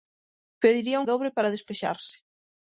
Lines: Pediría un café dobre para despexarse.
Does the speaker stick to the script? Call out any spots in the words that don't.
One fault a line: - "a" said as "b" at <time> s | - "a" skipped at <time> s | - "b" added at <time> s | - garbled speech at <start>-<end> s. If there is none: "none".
- "café" skipped at 1.1 s